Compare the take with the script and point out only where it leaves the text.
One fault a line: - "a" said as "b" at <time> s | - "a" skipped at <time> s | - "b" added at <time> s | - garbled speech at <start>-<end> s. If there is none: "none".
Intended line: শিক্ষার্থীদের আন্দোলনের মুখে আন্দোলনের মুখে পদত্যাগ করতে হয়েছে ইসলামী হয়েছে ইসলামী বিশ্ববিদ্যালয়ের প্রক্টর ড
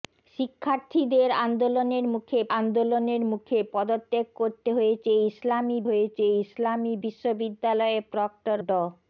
none